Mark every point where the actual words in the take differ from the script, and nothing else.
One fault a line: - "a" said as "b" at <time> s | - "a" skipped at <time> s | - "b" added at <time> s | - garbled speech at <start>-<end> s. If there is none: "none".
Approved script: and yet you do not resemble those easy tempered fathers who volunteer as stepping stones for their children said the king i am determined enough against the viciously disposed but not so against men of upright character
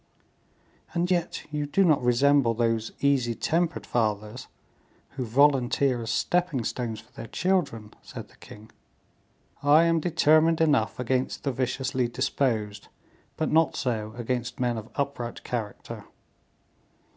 none